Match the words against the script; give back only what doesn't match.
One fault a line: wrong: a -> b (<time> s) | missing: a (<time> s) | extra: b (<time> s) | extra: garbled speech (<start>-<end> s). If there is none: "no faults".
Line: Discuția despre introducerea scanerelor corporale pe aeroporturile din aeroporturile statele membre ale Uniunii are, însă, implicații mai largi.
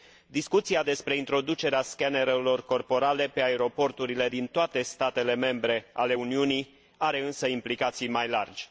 wrong: aeroporturile -> toate (4.5 s)